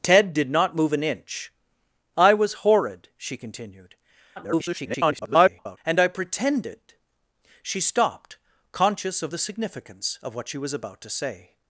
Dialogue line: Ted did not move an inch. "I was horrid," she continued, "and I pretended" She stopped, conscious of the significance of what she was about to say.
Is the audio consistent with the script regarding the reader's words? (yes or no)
no